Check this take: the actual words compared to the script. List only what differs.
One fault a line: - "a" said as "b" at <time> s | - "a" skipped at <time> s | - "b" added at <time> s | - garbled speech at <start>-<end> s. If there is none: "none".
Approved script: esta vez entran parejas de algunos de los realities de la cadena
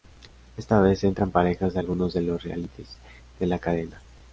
none